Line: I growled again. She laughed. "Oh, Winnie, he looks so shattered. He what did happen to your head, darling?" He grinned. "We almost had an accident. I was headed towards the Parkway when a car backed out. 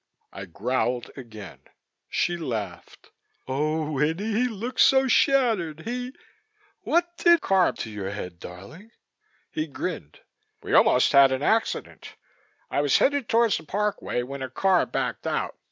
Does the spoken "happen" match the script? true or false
false